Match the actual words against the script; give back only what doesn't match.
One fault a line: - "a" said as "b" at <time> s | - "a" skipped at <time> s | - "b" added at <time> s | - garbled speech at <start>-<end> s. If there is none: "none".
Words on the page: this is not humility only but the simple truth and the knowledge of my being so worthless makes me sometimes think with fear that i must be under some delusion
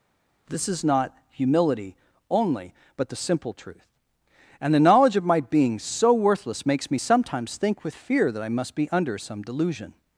none